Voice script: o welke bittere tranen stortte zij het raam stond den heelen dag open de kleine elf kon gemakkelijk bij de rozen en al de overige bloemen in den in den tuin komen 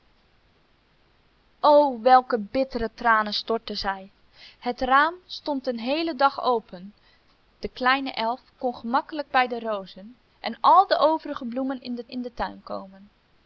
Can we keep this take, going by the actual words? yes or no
yes